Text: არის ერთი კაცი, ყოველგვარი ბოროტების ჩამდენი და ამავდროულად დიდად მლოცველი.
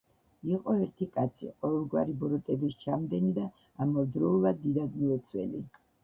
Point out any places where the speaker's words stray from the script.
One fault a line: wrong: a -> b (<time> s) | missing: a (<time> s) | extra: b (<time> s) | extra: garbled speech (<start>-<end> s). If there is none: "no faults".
wrong: არის -> იყო (0.5 s)